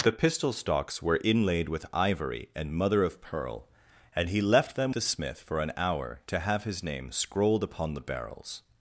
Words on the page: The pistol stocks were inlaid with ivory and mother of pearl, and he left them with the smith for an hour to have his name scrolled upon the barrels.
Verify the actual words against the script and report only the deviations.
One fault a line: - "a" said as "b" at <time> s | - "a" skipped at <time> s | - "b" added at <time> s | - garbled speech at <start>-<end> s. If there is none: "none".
- "with" skipped at 5.0 s